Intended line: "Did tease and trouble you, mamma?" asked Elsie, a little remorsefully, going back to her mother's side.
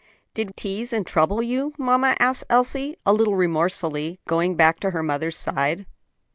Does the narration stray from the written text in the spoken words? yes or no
no